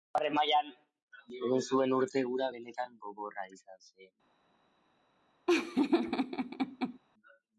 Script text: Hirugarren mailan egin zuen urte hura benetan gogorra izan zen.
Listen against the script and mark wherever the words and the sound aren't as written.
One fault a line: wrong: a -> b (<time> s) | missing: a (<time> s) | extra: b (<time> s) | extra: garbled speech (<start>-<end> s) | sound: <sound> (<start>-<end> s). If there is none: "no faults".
sound: laugh (5.5-7.0 s)